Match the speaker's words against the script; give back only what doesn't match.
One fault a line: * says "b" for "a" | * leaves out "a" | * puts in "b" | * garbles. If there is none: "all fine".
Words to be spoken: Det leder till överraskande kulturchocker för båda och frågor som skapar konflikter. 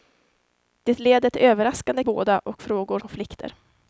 * leaves out "kulturchocker för"
* leaves out "som skapar"